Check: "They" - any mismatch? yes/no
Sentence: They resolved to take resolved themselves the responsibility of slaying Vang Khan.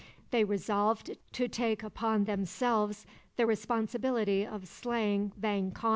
no